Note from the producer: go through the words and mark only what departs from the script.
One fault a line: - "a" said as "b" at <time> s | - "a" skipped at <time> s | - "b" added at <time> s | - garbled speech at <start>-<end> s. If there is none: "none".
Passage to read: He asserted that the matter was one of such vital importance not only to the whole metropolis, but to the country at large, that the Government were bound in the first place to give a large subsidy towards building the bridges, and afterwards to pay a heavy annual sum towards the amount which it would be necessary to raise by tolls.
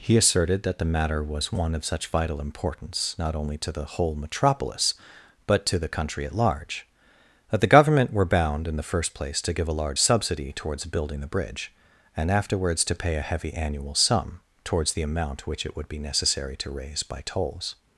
- "bridges" said as "bridge" at 11.3 s